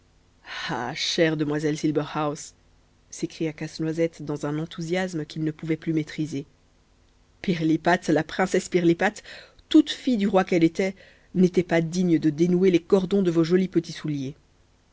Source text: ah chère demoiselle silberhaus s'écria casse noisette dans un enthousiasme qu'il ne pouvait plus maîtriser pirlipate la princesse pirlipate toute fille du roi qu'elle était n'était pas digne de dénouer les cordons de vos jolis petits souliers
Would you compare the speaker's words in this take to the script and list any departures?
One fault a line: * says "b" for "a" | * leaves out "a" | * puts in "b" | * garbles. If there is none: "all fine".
all fine